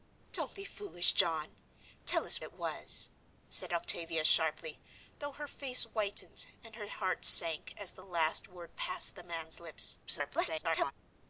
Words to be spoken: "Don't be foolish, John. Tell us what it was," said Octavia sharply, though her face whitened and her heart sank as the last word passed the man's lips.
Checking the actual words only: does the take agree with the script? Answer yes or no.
no